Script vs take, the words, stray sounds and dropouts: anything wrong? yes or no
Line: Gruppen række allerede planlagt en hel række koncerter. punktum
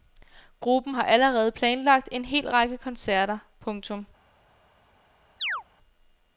yes